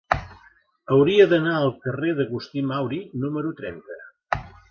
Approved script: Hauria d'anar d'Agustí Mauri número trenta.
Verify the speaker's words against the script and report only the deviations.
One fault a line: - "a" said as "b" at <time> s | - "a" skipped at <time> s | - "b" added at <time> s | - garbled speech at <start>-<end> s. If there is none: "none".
- "al carrer" added at 1.6 s